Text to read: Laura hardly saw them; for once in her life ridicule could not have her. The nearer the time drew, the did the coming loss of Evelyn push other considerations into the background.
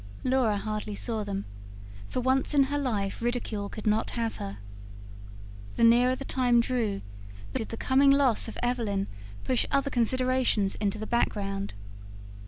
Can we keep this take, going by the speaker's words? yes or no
yes